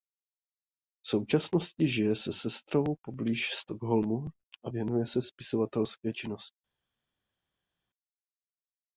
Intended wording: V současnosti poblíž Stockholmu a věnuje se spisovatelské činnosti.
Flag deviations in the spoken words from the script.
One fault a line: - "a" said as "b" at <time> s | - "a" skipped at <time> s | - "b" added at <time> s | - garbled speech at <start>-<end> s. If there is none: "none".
- "žije se sestrou" added at 1.9 s